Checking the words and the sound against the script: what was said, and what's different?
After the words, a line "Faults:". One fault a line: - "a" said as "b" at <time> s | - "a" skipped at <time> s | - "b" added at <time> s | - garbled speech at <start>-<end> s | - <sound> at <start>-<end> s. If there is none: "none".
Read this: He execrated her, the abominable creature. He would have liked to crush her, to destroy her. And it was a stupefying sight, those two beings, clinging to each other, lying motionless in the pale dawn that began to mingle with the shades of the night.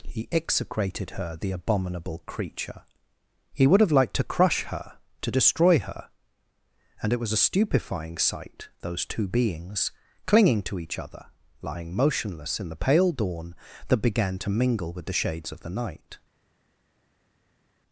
He execrated her, the abominable creature. He would have liked to crush her, to destroy her. And it was a stupefying sight, those two beings, clinging to each other, lying motionless in the pale dawn that began to mingle with the shades of the night.
Faults:
none